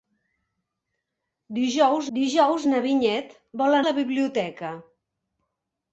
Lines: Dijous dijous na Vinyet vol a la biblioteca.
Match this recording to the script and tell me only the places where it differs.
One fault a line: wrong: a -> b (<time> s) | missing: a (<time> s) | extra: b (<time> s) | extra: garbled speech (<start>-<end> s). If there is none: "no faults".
no faults